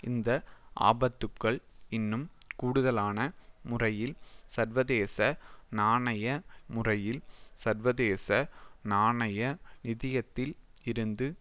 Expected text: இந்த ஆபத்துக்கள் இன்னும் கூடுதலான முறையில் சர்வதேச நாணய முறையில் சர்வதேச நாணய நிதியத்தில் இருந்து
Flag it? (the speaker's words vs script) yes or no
no